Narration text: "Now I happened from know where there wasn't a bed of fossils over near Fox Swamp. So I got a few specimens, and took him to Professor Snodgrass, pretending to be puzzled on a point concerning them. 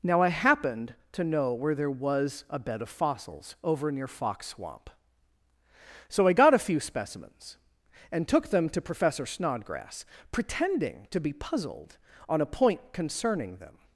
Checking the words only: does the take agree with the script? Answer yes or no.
no